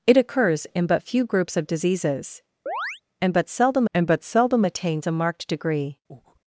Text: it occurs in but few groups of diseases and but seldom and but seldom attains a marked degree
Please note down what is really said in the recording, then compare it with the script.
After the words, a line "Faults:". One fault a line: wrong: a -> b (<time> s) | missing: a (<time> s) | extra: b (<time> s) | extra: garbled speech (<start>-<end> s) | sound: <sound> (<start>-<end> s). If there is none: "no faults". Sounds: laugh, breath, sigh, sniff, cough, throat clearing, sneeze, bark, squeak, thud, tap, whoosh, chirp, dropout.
it occurs in but few groups of diseases and but seldom and but seldom attains a marked degree
Faults:
sound: chirp (2.7-3.0 s)
sound: breath (6.1-6.4 s)